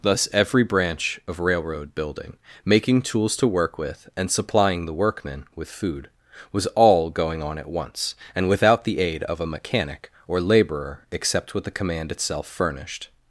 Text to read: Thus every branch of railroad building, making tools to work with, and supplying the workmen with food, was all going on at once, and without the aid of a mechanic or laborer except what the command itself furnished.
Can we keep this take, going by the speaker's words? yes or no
yes